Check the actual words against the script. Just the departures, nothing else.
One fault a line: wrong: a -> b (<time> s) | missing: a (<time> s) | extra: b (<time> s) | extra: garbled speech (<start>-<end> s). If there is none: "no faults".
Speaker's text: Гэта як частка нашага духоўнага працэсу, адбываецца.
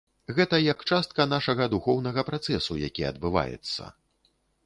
extra: які (2.9 s)